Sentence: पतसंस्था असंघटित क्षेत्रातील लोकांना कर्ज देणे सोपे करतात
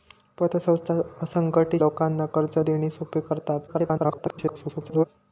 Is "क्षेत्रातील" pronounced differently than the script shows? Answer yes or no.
yes